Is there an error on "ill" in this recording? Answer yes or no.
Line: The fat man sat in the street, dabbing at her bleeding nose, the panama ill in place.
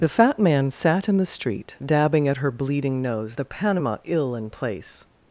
no